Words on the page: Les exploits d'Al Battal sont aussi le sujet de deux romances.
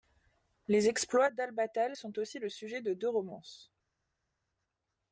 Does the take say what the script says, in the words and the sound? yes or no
yes